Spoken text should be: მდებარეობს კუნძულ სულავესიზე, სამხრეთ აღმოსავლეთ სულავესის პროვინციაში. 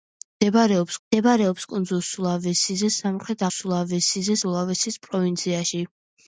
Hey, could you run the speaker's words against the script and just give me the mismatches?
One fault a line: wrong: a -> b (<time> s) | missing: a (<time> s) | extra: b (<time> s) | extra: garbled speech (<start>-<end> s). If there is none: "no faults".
extra: მდებარეობს (1.1 s)
wrong: აღმოსავლეთ -> სულავესიზე (3.5 s)